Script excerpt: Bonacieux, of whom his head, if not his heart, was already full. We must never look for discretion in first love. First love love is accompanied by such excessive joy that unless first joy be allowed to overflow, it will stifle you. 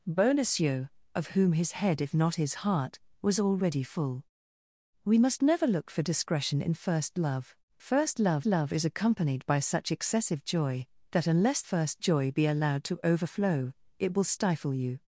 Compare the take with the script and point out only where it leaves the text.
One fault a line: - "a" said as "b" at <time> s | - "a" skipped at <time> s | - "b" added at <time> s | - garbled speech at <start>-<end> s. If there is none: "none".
none